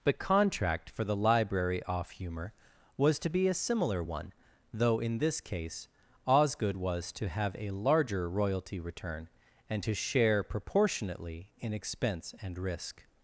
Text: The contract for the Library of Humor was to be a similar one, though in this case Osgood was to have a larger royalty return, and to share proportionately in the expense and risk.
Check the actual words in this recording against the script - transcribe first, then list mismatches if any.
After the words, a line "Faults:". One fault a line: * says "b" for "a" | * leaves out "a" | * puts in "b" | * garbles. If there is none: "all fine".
The contract for the Library off Humor was to be a similar one, though in this case Osgood was to have a larger royalty return, and to share proportionately in expense and risk.
Faults:
* says "off" for "of"
* leaves out "the"